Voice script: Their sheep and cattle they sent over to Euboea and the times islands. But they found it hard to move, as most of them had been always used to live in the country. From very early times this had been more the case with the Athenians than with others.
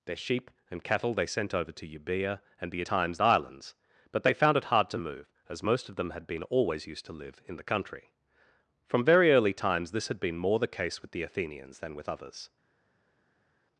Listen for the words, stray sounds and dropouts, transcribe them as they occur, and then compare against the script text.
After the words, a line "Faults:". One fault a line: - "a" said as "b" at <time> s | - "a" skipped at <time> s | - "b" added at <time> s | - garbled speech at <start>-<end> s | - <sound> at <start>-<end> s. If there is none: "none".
Their sheep and cattle they sent over to Euboea and the times islands. But they found it hard to move, as most of them had been always used to live in the country. From very early times this had been more the case with the Athenians than with others.
Faults:
none